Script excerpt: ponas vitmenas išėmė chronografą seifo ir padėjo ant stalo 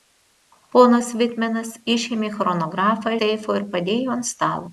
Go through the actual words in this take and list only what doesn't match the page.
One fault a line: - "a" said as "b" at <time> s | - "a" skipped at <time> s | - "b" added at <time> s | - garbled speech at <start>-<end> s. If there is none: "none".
none